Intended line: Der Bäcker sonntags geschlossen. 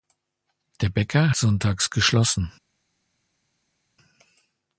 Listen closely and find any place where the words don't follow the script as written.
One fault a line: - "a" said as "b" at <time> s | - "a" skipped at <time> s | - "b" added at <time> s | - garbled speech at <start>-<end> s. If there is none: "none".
none